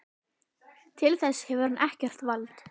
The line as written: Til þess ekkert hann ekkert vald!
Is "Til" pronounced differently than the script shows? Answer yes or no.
no